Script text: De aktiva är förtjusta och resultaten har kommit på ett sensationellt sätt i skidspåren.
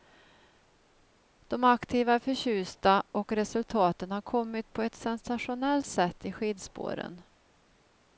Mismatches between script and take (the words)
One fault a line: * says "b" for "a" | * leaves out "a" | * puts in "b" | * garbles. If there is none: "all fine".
all fine